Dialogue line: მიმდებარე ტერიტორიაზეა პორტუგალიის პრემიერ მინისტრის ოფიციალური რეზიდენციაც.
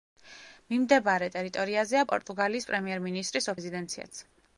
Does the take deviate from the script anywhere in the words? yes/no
yes